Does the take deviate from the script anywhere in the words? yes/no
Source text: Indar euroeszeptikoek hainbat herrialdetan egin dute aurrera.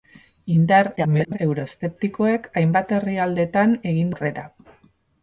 yes